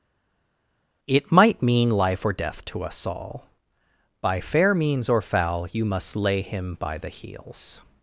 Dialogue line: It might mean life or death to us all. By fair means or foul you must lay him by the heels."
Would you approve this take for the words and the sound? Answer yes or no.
yes